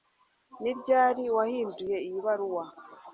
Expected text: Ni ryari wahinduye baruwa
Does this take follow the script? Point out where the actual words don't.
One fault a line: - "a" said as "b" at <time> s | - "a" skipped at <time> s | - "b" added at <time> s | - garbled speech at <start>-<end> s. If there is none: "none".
- "iyi" added at 2.1 s